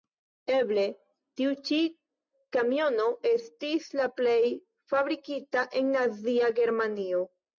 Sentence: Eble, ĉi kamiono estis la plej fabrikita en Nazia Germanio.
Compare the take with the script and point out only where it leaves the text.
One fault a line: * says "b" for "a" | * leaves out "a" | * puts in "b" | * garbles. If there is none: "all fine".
* puts in "tiu"